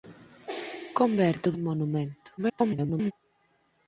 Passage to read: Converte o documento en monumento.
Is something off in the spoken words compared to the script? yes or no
yes